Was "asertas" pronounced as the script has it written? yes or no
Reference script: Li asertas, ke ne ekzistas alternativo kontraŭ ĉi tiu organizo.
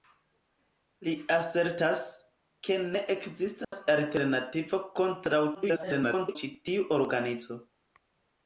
yes